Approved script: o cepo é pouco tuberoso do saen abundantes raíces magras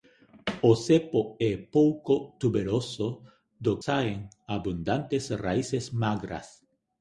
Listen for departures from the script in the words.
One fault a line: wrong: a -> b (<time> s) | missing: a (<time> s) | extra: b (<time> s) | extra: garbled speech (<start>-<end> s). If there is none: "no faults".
no faults